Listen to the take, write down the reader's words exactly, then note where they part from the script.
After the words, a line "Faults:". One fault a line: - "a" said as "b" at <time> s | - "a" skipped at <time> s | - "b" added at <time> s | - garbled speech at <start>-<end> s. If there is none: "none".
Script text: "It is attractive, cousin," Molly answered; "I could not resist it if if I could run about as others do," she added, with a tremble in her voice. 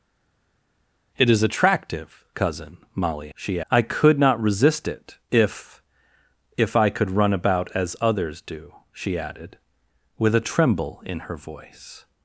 "It is attractive, cousin," Molly she; "I could not resist it if if I could run about as others do," she added, with a tremble in her voice.
Faults:
- "answered" said as "she" at 3.3 s